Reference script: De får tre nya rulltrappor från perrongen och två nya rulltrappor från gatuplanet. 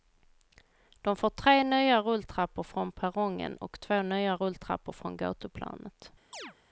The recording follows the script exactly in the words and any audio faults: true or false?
false